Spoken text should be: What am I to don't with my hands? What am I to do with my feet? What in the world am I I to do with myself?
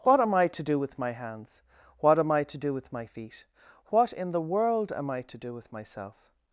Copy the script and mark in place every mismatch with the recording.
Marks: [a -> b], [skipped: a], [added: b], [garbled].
What am I to [don't -> do] with my hands? What am I to do with my feet? What in the world am I [skipped: I] to do with myself?